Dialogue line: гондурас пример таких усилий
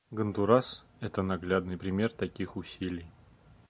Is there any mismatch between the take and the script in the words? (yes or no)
yes